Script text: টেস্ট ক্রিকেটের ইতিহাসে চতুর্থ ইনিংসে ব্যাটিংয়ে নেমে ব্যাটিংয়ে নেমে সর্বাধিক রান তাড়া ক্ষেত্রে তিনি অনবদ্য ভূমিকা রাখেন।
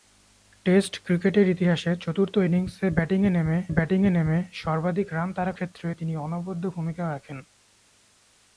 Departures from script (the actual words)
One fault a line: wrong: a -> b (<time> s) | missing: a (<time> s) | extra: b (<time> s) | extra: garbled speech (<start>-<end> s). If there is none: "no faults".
no faults